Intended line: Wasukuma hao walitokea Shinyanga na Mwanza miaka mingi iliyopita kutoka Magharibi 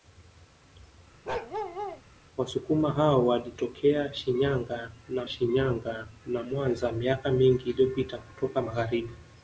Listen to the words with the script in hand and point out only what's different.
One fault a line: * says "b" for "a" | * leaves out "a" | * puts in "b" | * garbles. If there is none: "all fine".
* puts in "Shinyanga na"